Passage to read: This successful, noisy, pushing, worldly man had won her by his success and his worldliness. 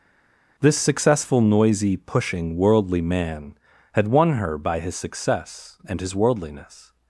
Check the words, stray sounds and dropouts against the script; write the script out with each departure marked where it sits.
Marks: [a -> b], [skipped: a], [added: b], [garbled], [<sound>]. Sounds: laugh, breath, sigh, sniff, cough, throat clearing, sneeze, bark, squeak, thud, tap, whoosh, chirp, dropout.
This successful, noisy, pushing, worldly man had won her by his success and his worldliness.